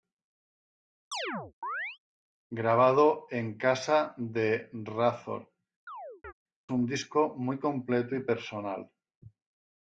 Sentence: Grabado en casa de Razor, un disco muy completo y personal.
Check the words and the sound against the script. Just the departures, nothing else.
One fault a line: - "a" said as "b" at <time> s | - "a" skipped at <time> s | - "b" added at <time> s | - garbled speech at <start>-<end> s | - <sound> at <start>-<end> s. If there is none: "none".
- chirp at 1.1-2.0 s
- chirp at 5.9-6.3 s